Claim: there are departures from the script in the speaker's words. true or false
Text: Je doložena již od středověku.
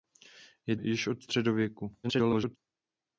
true